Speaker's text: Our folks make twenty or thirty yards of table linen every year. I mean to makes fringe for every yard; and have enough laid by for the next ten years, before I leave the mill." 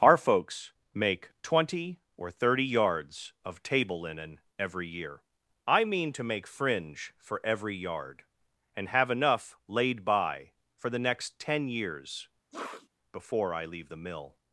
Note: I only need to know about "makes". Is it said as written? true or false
false